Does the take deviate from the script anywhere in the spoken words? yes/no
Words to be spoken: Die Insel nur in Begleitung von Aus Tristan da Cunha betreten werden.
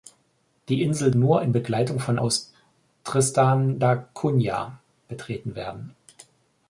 no